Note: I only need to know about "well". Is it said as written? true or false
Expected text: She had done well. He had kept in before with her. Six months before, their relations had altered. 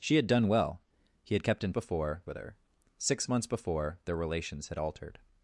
true